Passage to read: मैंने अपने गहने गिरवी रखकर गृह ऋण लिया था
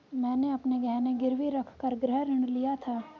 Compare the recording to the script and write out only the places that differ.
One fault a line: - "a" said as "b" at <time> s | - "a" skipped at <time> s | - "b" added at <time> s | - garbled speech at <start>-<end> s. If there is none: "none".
none